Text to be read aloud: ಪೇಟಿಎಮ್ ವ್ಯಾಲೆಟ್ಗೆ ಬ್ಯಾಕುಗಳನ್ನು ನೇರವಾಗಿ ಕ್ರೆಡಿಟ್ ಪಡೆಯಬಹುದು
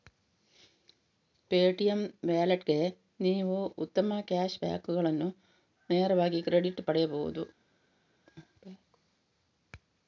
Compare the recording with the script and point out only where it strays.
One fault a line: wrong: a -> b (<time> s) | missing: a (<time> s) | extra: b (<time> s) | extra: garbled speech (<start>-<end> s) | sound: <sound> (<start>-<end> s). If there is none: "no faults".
extra: ನೀವು ಉತ್ತಮ ಕ್ಯಾಶ್ (3.2 s)